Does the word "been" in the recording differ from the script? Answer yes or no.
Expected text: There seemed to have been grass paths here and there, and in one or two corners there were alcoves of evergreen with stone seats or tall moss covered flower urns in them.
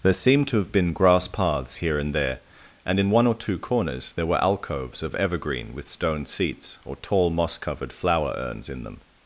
no